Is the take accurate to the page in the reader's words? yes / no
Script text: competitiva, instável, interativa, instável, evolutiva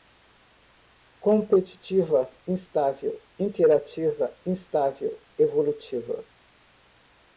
yes